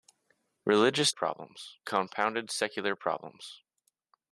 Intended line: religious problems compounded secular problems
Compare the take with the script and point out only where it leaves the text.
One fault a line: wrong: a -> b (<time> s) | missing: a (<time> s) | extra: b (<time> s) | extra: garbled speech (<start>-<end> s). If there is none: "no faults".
no faults